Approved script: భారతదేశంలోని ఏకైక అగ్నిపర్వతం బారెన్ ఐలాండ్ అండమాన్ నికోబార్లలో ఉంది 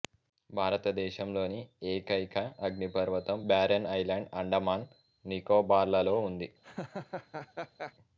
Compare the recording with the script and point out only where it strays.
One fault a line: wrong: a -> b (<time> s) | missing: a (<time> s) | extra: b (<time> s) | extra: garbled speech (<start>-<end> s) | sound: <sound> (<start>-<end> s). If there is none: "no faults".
sound: laugh (6.6-7.9 s)